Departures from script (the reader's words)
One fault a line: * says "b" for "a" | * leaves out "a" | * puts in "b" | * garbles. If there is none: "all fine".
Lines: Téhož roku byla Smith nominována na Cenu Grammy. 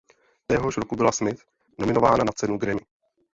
all fine